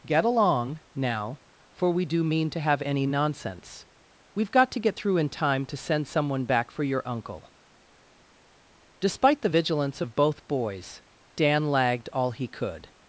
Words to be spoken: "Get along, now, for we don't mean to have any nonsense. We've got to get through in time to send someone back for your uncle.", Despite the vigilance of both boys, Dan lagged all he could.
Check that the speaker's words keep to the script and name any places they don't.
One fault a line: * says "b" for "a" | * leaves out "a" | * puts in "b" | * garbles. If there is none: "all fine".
* says "do" for "don't"